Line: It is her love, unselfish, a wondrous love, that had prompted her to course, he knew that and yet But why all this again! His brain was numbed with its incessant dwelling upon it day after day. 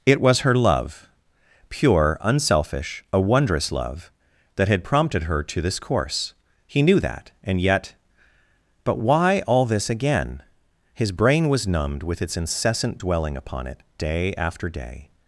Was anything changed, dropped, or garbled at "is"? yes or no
yes